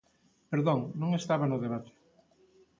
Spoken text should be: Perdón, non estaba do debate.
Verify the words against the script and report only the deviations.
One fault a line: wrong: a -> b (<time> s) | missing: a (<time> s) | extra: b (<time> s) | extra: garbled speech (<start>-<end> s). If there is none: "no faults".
wrong: do -> no (1.5 s)